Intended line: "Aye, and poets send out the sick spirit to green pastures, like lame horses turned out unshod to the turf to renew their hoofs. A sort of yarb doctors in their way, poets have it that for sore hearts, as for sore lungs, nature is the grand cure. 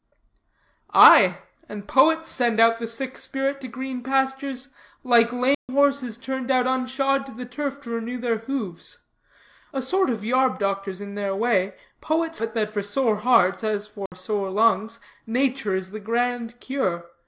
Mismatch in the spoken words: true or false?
true